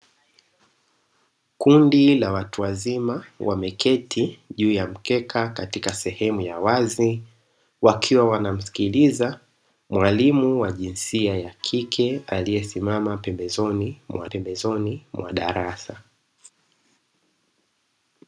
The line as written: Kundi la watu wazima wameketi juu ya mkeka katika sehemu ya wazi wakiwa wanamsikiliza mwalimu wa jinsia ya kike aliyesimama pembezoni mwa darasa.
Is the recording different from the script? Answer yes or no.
yes